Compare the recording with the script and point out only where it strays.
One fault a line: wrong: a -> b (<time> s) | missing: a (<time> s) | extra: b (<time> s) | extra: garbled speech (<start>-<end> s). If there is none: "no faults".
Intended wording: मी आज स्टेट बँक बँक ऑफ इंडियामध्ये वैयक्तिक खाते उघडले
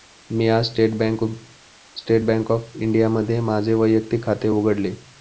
missing: बँक (2.5 s)
extra: माझे (3.4 s)